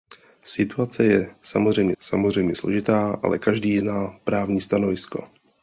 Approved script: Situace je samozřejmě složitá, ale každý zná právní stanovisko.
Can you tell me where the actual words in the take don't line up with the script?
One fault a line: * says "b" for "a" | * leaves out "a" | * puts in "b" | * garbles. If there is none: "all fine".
* puts in "samozřejmě"